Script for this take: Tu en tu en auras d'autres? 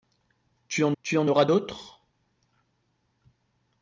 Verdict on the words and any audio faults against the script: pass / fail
pass